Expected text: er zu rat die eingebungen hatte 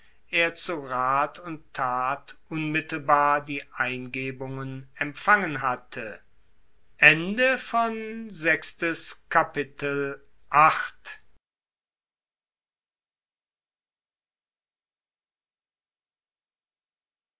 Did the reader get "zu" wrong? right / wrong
right